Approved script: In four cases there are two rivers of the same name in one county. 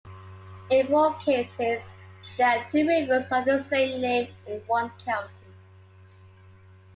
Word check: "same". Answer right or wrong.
right